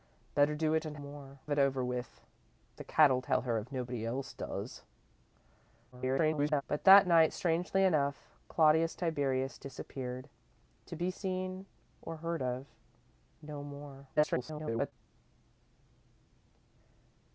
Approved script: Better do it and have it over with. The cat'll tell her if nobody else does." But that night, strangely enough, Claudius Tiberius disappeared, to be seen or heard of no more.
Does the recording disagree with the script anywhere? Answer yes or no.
yes